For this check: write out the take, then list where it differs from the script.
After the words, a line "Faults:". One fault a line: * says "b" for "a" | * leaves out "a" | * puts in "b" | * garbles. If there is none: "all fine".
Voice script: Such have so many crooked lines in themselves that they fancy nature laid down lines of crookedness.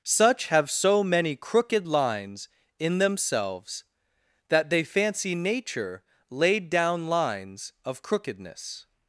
Such have so many crooked lines in themselves that they fancy nature laid down lines of crookedness.
Faults:
all fine